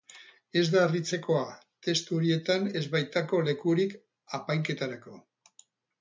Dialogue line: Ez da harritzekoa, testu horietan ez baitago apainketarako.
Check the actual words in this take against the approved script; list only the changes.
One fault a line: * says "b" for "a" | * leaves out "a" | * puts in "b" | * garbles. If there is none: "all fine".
* puts in "lekurik"